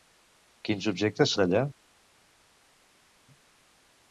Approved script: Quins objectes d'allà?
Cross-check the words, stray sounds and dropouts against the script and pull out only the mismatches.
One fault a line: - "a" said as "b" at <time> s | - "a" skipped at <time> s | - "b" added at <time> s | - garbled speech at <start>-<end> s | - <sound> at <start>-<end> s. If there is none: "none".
none